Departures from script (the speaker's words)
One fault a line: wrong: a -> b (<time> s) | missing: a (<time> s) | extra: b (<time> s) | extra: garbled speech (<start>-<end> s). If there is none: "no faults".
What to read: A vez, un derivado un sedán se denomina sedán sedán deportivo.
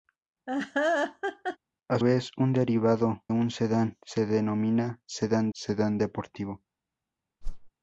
no faults